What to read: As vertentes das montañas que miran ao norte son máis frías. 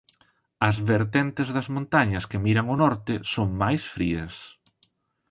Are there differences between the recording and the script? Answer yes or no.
no